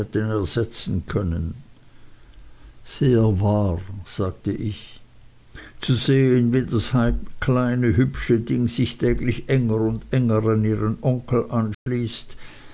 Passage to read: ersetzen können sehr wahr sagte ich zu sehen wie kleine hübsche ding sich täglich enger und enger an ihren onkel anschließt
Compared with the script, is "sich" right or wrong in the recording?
right